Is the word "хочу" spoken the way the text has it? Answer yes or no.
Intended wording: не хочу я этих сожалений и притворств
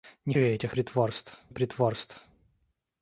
no